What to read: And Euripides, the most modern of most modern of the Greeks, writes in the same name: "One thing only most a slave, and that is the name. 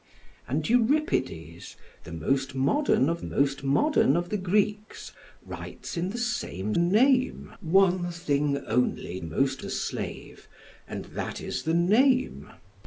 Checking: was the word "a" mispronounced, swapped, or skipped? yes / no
no